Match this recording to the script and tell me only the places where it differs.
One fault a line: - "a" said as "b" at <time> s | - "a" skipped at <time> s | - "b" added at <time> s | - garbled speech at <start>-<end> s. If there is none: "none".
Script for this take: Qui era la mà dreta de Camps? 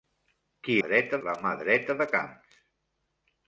- "era" said as "dreta" at 0.9 s